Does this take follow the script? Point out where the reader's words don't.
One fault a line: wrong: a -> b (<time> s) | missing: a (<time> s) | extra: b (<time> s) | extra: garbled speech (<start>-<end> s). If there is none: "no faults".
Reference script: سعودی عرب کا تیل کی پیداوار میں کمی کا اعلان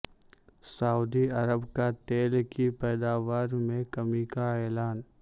no faults